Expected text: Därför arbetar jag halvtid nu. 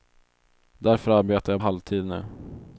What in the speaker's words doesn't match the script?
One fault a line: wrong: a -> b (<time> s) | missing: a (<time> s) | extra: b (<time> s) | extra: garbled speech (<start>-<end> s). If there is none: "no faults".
no faults